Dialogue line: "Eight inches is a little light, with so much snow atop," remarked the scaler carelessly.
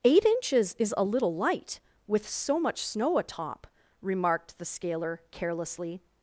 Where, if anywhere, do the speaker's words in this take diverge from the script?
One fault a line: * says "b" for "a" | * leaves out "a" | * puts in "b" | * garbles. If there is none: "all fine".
all fine